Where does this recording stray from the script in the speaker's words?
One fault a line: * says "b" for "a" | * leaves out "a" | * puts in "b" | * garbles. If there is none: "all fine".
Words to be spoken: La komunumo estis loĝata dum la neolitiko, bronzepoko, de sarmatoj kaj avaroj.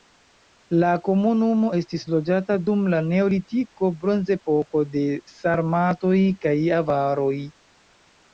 all fine